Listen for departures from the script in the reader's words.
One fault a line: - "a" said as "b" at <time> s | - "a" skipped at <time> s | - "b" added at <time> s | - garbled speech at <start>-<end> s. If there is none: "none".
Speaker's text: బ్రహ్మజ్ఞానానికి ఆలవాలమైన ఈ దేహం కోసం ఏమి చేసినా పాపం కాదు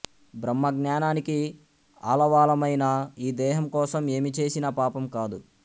none